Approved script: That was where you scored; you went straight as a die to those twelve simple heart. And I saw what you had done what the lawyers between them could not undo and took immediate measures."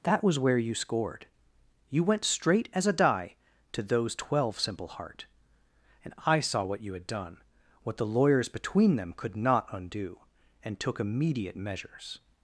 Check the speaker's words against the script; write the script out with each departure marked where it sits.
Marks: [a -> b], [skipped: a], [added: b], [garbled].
That was where you scored; you went straight as a die to those twelve simple heart. And I saw what you had done what the lawyers between them could not undo and took immediate measures."